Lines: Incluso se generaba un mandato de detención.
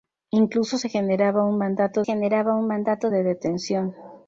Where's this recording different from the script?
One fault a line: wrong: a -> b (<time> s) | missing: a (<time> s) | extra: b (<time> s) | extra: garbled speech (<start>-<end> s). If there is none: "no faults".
extra: generaba un mandato (2.0 s)